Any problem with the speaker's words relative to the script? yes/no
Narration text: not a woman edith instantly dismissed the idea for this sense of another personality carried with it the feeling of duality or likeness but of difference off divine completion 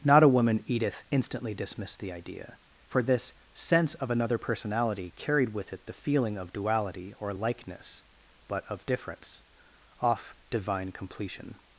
no